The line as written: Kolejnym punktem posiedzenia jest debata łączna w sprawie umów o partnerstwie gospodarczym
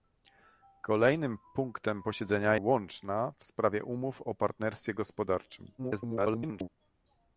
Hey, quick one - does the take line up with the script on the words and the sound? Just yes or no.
no